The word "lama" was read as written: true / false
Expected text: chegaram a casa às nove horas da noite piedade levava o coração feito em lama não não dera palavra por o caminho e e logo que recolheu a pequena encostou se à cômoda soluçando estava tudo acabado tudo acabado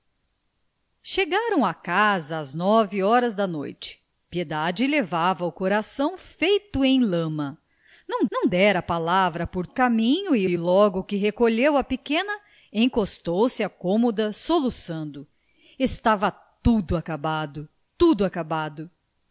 true